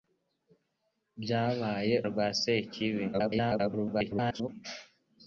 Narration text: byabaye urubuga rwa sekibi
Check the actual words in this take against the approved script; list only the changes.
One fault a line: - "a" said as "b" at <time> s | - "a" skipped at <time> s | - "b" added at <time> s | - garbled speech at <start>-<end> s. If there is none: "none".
- "urubuga" skipped at 1.9 s
- garbled speech at 3.1-4.5 s